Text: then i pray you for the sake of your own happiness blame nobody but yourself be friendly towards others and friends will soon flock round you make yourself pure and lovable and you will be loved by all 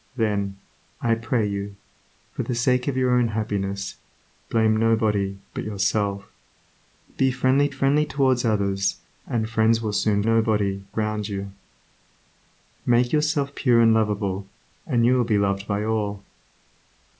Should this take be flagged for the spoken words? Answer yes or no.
yes